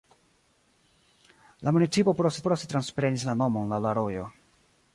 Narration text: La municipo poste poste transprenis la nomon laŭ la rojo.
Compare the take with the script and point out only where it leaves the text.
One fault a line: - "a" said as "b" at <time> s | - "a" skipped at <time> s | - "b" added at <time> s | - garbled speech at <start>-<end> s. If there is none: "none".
none